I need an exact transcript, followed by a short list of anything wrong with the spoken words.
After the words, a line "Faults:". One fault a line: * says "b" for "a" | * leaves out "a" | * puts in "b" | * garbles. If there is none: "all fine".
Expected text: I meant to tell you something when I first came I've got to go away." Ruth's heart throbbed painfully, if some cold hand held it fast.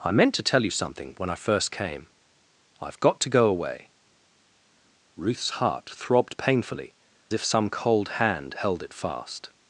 I meant to tell you something when I first came I've got to go away." Ruth's heart throbbed painfully, if some cold hand held it fast.
Faults:
all fine